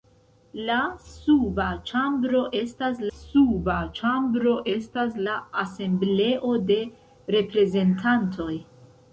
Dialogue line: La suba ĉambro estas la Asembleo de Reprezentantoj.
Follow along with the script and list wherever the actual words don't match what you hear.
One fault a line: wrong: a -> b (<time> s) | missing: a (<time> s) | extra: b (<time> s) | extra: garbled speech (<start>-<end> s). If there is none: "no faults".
extra: suba ĉambro estas (3.1 s)